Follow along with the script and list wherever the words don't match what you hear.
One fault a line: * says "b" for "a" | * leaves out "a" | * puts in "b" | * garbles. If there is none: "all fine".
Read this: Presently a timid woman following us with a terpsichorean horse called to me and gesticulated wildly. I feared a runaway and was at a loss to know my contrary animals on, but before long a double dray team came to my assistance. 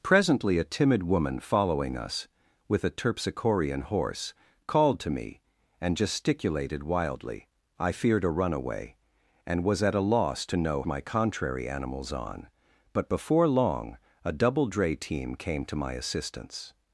all fine